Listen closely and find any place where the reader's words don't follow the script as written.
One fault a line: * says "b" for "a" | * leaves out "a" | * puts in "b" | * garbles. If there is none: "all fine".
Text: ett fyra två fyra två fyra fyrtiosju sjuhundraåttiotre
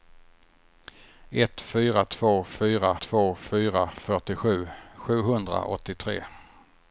all fine